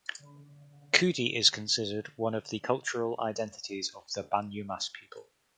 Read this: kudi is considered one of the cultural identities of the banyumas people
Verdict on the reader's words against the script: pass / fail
pass